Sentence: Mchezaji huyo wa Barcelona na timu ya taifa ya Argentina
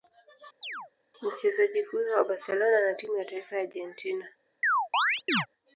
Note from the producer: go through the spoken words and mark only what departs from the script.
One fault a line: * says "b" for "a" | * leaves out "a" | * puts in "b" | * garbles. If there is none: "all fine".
all fine